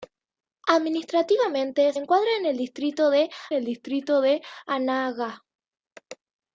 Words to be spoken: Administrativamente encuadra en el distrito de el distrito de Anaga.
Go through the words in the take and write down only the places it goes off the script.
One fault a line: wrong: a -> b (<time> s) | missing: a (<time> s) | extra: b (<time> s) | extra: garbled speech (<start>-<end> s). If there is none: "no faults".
no faults